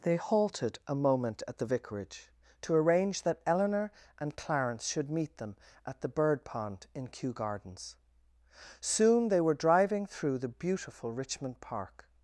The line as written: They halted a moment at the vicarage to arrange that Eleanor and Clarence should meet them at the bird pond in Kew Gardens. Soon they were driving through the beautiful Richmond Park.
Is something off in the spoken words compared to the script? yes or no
no